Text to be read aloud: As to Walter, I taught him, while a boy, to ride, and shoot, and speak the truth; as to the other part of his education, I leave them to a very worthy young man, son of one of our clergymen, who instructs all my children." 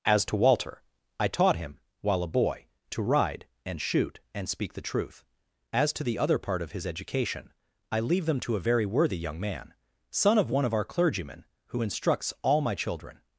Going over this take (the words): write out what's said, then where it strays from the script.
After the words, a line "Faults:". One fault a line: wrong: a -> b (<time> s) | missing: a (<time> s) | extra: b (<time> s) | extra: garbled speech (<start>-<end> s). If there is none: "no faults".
As to Walter, I taught him, while a boy, to ride, and shoot, and speak the truth; as to the other part of his education, I leave them to a very worthy young man, son of one of our clergymen, who instructs all my children."
Faults:
no faults